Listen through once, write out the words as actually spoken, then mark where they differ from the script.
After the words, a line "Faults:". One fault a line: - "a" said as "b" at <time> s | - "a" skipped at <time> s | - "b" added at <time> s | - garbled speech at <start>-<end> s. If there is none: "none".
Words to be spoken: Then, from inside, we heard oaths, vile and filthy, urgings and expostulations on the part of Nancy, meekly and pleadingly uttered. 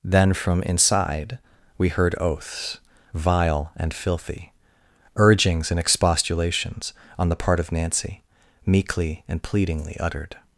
Then, from inside, we heard oaths, vile and filthy, urgings and expostulations on the part of Nancy, meekly and pleadingly uttered.
Faults:
none